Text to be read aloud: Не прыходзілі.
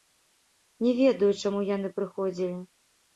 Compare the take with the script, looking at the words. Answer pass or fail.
fail